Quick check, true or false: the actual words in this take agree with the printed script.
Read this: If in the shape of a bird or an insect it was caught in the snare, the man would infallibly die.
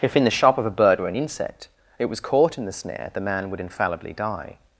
false